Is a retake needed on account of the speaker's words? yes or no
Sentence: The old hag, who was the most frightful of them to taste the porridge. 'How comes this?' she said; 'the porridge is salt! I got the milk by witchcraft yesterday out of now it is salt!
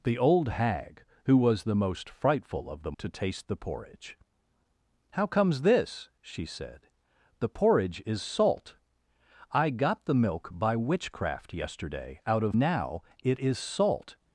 no